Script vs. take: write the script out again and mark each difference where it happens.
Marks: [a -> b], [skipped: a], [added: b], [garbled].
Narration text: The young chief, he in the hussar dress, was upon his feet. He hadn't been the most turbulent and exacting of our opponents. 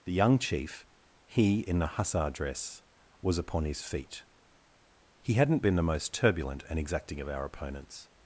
The young chief, he in the hussar dress, was upon his feet. He hadn't been the most turbulent and exacting of our opponents.